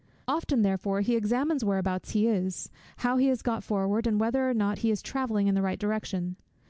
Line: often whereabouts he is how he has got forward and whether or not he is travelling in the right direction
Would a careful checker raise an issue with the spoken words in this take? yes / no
yes